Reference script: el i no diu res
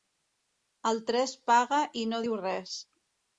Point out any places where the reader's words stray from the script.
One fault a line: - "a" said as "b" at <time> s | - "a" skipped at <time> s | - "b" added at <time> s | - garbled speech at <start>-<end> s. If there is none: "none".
- "tres paga" added at 1.1 s